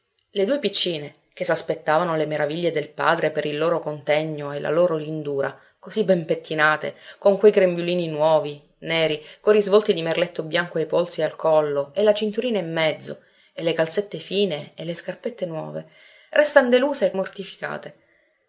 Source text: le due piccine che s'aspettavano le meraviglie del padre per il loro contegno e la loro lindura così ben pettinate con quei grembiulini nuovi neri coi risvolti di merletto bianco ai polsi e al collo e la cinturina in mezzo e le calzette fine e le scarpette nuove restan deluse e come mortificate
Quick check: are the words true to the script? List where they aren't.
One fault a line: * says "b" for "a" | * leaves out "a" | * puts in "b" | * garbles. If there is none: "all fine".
* leaves out "come"